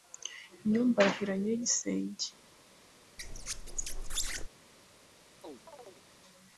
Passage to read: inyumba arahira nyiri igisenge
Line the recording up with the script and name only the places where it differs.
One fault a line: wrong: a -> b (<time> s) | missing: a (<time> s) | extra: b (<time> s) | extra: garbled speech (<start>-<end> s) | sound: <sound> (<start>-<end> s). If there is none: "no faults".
sound: squeak (3.2-4.5 s)
sound: chirp (5.4-6.0 s)